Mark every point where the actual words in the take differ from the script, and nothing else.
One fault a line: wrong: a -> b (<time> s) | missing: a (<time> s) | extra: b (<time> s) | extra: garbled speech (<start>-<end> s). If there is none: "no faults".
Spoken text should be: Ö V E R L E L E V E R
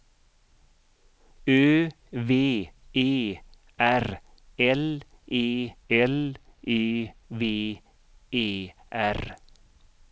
no faults